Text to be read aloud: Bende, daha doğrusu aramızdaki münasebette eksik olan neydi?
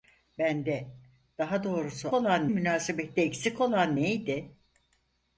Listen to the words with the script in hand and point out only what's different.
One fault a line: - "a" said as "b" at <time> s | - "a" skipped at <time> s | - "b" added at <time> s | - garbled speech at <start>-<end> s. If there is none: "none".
- "aramızdaki" said as "olan" at 2.1 s